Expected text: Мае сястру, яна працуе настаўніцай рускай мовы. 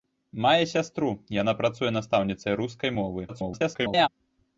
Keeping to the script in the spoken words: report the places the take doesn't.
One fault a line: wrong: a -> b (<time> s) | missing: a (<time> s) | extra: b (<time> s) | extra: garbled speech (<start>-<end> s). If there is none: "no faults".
extra: garbled speech (3.3-4.1 s)